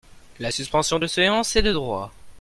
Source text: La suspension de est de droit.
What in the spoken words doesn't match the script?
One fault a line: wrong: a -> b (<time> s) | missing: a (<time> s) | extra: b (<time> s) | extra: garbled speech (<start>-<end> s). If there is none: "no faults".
extra: séance (1.1 s)